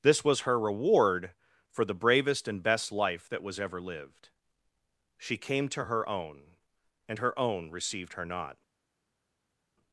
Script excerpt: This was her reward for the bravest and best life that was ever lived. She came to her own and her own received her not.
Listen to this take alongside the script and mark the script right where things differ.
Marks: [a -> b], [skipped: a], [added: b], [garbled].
This was her reward for the bravest and best life that was ever lived. She came to her own and her own received her not.